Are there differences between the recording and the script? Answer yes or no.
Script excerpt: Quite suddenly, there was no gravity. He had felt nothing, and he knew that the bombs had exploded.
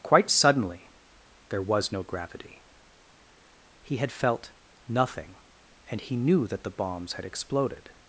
no